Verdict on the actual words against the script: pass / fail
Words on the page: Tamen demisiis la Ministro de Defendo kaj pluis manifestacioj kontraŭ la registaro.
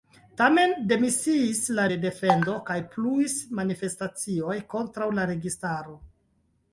fail